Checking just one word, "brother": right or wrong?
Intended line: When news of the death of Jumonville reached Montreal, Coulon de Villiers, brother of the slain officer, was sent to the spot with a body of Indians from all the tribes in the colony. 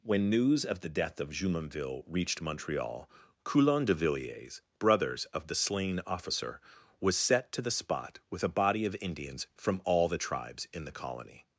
wrong